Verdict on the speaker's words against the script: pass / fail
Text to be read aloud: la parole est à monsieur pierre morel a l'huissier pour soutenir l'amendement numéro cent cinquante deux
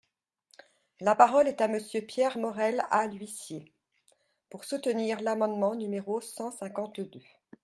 pass